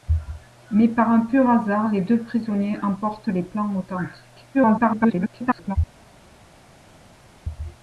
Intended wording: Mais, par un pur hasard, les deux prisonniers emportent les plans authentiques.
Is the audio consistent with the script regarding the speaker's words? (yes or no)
no